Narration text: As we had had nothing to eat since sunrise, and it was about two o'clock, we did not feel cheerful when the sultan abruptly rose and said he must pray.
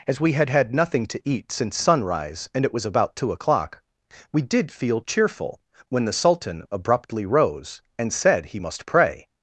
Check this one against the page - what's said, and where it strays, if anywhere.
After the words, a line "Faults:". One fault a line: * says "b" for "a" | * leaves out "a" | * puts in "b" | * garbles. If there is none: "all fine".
As we had had nothing to eat since sunrise, and it was about two o'clock, we did feel cheerful when the sultan abruptly rose and said he must pray.
Faults:
* leaves out "not"